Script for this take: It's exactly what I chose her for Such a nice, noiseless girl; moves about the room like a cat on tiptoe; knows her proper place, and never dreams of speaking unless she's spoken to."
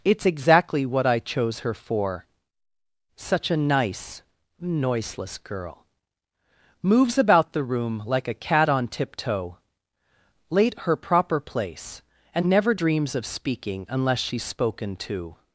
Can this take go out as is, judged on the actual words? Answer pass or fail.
fail